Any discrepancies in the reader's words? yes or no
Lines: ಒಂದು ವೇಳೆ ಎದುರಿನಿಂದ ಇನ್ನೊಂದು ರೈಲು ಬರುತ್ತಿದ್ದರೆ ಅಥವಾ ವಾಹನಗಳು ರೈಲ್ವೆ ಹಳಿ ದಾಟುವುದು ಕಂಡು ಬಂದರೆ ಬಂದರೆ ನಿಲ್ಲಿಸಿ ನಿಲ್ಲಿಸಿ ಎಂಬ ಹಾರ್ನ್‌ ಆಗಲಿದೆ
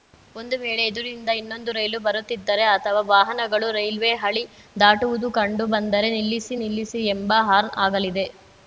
yes